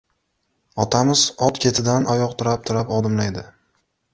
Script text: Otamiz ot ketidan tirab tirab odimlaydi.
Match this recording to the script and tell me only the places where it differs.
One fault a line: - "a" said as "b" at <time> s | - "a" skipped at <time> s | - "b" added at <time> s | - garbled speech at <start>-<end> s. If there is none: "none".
- "oyoq" added at 2.1 s